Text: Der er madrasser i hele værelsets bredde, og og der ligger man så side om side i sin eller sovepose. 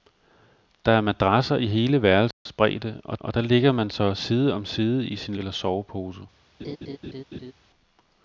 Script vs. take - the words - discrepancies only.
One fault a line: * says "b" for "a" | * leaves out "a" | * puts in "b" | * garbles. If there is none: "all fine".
all fine